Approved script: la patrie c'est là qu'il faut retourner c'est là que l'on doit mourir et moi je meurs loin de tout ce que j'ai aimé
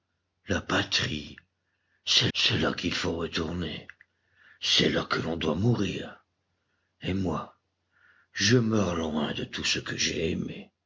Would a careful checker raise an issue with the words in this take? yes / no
yes